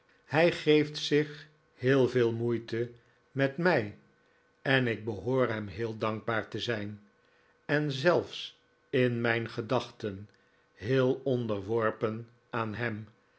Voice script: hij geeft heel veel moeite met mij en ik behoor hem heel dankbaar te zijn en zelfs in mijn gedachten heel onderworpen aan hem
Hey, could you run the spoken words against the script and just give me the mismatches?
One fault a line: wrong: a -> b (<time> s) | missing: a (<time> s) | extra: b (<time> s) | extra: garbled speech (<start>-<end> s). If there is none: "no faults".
extra: zich (1.0 s)